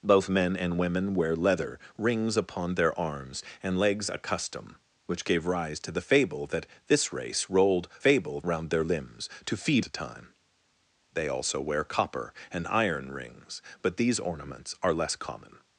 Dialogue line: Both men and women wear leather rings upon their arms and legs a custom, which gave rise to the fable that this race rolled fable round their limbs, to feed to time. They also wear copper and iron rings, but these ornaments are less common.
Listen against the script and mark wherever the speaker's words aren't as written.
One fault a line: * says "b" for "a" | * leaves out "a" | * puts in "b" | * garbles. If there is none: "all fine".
all fine